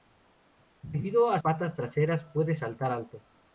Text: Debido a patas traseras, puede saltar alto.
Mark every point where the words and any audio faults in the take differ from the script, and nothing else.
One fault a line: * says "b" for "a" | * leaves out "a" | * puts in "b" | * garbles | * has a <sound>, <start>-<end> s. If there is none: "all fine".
all fine